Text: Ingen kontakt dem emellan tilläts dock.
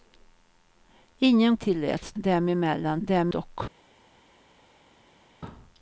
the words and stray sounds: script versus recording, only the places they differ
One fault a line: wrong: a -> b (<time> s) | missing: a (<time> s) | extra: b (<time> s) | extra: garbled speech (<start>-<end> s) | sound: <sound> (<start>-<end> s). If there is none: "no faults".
wrong: kontakt -> tilläts (1.6 s)
wrong: tilläts -> dem (3.0 s)